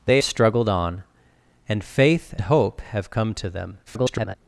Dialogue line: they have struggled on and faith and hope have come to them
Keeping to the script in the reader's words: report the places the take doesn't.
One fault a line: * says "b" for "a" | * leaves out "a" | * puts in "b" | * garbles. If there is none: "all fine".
* leaves out "have"
* leaves out "and"
* garbles